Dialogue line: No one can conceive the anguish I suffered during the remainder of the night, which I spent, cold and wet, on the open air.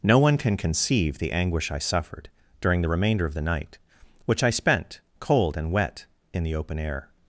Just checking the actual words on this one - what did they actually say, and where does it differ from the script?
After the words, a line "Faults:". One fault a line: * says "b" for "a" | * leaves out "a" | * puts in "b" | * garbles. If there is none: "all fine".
No one can conceive the anguish I suffered during the remainder of the night, which I spent, cold and wet, in the open air.
Faults:
* says "in" for "on"